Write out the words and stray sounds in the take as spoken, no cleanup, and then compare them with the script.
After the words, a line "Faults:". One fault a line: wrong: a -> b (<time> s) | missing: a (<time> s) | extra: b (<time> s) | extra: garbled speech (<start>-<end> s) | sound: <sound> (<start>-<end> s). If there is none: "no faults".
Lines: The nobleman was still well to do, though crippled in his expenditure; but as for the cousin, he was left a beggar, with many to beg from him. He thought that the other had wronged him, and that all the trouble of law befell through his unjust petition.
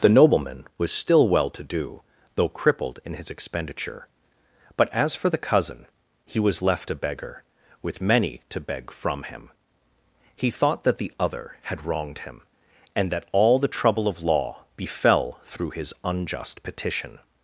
The nobleman was still well to do, though crippled in his expenditure; but as for the cousin, he was left a beggar, with many to beg from him. He thought that the other had wronged him, and that all the trouble of law befell through his unjust petition.
Faults:
no faults